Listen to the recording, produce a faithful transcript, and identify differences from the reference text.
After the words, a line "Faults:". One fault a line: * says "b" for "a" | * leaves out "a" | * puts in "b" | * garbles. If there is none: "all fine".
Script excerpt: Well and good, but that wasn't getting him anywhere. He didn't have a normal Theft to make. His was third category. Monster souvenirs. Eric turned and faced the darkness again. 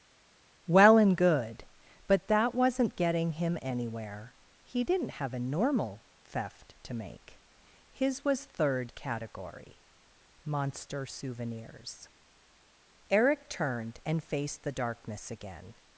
Well and good, but that wasn't getting him anywhere. He didn't have a normal Theft to make. His was third category. Monster souvenirs. Eric turned and faced the darkness again.
Faults:
all fine